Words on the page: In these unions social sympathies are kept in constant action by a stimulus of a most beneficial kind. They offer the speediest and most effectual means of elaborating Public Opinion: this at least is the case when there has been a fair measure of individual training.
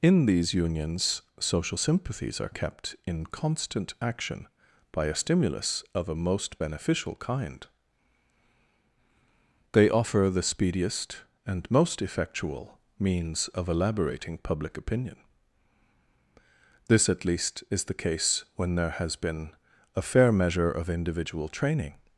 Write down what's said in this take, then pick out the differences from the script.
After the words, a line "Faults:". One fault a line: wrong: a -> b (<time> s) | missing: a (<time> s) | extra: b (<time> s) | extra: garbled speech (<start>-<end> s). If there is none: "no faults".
In these unions social sympathies are kept in constant action by a stimulus of a most beneficial kind. They offer the speediest and most effectual means of elaborating Public Opinion: this at least is the case when there has been a fair measure of individual training.
Faults:
no faults